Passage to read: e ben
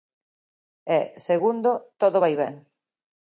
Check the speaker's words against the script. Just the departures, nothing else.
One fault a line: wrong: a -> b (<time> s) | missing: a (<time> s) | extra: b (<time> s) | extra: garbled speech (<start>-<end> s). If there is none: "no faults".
extra: segundo todo vai (1.3 s)